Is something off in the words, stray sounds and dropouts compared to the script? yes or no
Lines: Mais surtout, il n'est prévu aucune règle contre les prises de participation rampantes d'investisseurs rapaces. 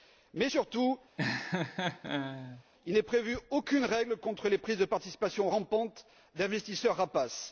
yes